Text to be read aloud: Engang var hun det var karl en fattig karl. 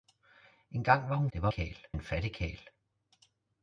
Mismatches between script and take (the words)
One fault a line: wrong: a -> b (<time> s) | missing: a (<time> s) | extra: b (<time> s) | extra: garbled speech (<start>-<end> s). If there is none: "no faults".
no faults